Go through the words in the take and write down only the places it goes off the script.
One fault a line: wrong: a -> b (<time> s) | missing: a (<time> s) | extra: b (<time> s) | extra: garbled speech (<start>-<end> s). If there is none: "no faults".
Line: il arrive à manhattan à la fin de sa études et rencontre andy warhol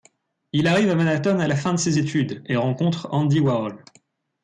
wrong: sa -> ses (1.8 s)